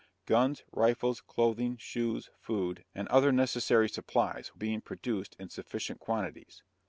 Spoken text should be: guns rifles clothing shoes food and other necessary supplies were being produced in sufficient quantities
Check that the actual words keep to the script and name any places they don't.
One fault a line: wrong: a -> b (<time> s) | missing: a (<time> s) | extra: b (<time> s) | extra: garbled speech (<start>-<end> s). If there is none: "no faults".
missing: were (4.5 s)